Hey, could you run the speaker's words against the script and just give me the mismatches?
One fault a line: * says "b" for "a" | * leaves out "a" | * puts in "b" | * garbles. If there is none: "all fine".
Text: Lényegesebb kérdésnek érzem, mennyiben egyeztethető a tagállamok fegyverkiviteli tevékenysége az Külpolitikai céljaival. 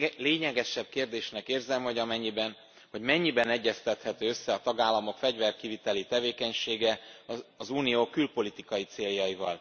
* puts in "hogy"
* puts in "össze"
* puts in "Unió"